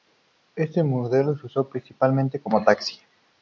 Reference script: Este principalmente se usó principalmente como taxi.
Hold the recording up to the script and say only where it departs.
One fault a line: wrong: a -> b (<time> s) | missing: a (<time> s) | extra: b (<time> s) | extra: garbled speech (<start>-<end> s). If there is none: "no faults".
wrong: principalmente -> modelo (0.8 s)